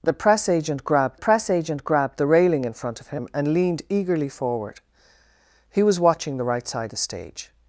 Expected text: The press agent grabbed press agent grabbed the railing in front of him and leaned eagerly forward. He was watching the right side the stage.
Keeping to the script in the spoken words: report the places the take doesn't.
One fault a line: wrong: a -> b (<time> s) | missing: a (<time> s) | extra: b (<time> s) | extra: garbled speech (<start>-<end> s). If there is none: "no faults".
no faults